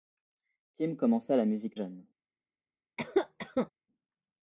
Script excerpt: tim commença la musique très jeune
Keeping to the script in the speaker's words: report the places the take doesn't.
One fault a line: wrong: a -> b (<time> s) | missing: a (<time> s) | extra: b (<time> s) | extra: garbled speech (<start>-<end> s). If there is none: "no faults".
missing: très (1.8 s)